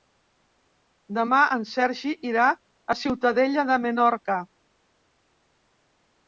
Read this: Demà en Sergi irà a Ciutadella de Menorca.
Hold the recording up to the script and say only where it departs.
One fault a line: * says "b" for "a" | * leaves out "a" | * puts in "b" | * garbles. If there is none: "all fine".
all fine